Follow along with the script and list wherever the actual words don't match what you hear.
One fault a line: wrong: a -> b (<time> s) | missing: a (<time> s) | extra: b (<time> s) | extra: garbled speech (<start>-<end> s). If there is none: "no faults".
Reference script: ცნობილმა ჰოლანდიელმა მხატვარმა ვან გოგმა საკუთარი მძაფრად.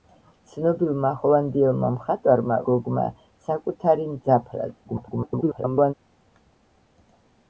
missing: ვან (2.6 s)
extra: garbled speech (4.8-5.9 s)